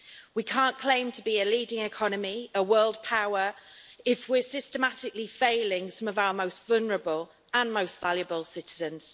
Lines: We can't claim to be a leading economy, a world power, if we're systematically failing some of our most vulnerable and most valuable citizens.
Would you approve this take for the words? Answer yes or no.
yes